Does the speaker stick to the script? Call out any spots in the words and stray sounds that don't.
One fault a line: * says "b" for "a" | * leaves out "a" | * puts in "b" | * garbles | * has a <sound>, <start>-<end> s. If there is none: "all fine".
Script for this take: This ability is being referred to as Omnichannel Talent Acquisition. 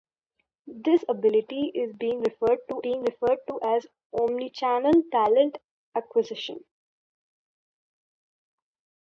* puts in "being referred to"